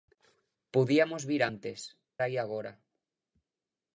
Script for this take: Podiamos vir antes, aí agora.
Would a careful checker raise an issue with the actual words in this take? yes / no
no